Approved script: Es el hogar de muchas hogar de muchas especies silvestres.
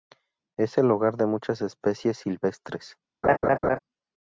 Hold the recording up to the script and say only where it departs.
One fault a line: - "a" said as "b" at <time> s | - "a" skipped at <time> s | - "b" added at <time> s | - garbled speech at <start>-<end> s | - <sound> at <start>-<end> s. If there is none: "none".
- "hogar de muchas" skipped at 1.6 s
- laugh at 3.2-3.8 s